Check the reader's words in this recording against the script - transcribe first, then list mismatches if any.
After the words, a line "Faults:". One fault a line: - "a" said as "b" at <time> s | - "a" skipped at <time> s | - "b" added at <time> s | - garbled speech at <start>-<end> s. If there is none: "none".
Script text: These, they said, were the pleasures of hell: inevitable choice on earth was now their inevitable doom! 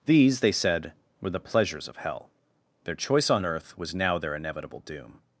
These, they said, were the pleasures of hell: their choice on earth was now their inevitable doom!
Faults:
- "inevitable" said as "their" at 2.8 s